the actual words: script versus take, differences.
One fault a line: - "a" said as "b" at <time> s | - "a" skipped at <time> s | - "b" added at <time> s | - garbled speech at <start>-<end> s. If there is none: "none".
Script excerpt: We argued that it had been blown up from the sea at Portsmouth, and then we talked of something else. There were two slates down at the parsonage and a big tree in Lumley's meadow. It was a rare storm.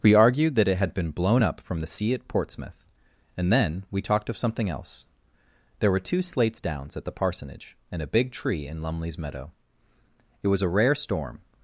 - "down" said as "downs" at 6.6 s